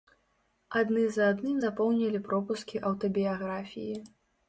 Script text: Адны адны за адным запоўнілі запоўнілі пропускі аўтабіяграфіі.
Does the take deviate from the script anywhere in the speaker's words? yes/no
yes